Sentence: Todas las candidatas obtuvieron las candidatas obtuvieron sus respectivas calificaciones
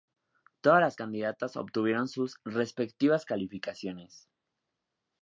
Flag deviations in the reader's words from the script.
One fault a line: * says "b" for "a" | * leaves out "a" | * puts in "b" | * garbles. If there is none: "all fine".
* leaves out "las candidatas obtuvieron"